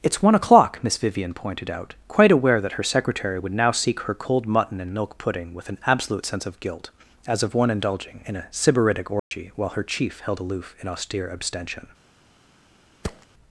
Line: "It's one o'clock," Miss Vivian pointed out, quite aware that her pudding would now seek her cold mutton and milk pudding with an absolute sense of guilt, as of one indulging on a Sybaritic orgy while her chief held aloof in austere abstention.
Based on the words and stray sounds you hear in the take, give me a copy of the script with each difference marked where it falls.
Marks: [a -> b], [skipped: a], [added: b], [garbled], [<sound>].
"It's one o'clock," Miss Vivian pointed out, quite aware that her [pudding -> secretary] would now seek her cold mutton and milk pudding with an absolute sense of guilt, as of one indulging [on -> in] a Sybaritic orgy [dropout] while her chief held aloof in austere abstention. [thud]